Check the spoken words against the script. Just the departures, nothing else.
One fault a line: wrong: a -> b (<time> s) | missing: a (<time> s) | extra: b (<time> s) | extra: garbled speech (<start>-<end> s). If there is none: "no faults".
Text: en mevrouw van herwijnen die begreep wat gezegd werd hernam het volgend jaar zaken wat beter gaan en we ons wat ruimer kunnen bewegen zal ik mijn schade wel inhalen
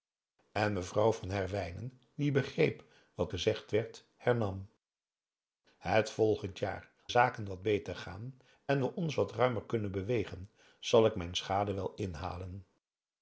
no faults